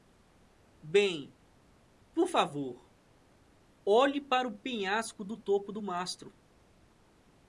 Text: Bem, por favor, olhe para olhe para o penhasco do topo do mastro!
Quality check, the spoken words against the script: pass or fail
fail